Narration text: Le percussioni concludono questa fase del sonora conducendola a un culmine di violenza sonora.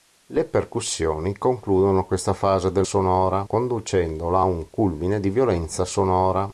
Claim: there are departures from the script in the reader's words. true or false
false